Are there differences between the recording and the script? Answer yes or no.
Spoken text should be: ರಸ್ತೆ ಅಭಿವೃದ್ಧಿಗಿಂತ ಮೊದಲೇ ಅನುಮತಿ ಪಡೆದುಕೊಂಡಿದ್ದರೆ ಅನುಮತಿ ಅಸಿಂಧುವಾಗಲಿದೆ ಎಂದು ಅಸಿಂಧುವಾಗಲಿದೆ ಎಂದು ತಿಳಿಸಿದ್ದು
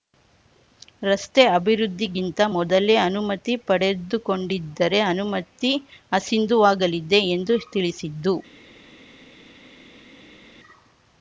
yes